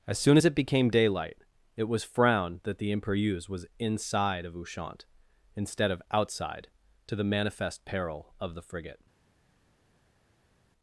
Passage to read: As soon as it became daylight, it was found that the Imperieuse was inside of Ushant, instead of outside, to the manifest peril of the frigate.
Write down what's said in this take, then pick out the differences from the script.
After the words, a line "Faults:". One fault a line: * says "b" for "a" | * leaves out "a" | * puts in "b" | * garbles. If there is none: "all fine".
As soon as it became daylight, it was frowned that the Imperieuse was inside of Ushant, instead of outside, to the manifest peril of the frigate.
Faults:
* says "frowned" for "found"